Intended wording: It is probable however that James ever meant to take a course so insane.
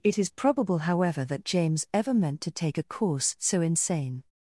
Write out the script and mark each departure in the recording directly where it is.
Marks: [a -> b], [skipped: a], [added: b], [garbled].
It is probable however that James ever meant to take a course so insane.